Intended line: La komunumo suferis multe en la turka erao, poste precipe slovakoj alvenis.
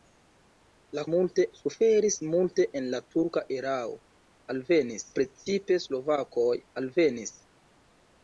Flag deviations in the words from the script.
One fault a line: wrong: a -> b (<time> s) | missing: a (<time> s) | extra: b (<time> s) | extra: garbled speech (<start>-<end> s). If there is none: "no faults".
wrong: komunumo -> multe (1.1 s)
wrong: poste -> alvenis (4.5 s)